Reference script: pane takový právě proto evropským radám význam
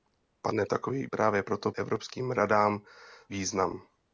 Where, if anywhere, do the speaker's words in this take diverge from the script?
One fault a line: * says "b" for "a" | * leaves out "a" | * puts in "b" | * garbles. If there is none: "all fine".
all fine